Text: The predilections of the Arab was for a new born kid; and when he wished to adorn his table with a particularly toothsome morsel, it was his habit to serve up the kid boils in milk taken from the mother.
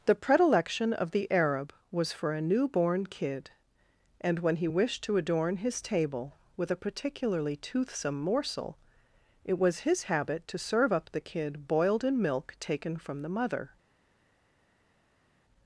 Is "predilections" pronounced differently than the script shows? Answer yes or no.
yes